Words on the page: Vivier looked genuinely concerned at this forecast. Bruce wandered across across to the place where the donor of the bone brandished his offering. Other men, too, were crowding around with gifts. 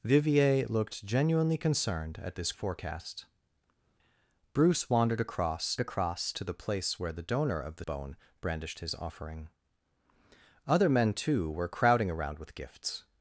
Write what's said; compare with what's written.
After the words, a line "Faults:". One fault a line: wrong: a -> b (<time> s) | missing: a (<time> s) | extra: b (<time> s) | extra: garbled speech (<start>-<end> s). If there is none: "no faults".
Vivier looked genuinely concerned at this forecast. Bruce wandered across across to the place where the donor of the bone brandished his offering. Other men, too, were crowding around with gifts.
Faults:
no faults